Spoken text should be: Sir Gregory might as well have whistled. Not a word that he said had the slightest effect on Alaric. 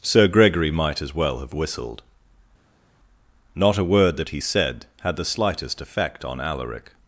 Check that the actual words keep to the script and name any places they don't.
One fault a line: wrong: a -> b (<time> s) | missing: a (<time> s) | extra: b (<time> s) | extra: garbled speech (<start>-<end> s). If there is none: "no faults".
no faults